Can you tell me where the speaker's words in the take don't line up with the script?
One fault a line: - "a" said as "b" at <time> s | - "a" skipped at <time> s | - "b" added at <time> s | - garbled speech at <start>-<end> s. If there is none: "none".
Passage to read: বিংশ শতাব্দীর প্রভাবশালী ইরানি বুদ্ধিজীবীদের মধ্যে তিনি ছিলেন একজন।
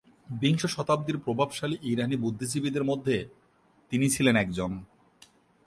none